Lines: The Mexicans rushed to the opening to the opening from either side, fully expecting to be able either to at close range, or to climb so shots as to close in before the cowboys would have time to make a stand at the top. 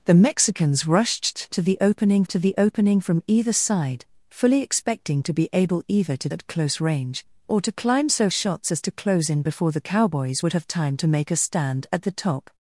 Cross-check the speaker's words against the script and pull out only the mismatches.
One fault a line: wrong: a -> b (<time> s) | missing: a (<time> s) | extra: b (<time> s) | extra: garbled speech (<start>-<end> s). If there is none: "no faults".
no faults